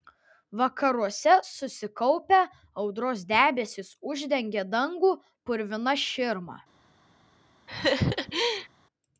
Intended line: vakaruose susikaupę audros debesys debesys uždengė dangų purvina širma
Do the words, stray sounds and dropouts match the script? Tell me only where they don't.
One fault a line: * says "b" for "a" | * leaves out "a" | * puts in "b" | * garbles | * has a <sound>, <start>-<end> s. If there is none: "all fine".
* leaves out "debesys"
* has a laugh, 7.7-8.7 s